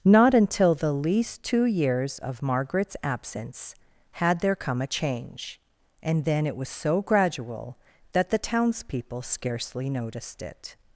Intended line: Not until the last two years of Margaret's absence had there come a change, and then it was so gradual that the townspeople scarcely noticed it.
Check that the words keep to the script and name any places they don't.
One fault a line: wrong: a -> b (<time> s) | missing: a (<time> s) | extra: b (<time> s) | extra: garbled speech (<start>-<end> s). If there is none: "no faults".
wrong: last -> least (0.9 s)